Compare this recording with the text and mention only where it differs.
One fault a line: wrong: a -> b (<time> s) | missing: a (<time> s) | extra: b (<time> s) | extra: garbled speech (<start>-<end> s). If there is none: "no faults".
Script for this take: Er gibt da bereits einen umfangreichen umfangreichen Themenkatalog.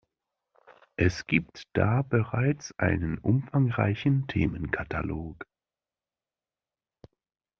wrong: Er -> Es (0.9 s)
missing: umfangreichen (4.3 s)